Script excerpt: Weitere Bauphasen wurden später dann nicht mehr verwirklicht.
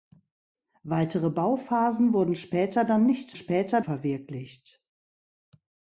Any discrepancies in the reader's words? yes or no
yes